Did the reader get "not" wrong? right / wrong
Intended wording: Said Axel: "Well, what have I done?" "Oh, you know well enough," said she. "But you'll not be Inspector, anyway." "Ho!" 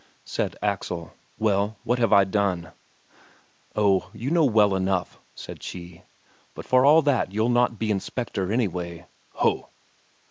right